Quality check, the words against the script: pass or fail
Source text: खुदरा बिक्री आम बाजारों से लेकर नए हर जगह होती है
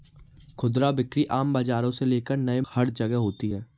pass